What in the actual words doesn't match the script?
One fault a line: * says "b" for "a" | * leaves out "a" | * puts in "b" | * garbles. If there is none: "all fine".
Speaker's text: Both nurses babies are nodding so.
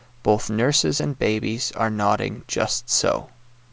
* puts in "and"
* puts in "just"